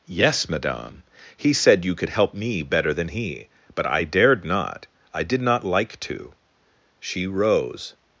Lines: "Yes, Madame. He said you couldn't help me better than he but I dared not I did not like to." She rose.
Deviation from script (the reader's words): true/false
true